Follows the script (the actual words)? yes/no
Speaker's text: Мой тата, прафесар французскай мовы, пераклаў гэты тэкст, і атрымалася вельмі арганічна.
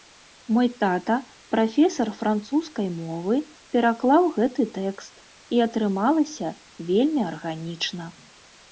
yes